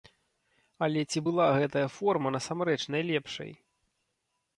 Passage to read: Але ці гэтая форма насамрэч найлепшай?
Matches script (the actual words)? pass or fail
fail